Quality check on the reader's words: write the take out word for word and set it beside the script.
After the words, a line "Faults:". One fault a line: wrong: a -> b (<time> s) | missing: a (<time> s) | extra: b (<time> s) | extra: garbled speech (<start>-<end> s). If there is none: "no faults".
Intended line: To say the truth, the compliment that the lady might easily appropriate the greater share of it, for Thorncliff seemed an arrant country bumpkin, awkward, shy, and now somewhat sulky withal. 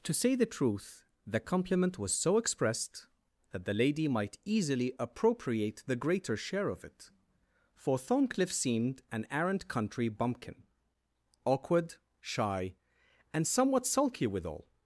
To say the truth, the compliment was so expressed, that the lady might easily appropriate the greater share of it, for Thorncliff seemed an arrant country bumpkin, awkward, shy, and somewhat sulky withal.
Faults:
extra: was so expressed (2.0 s)
missing: now (13.4 s)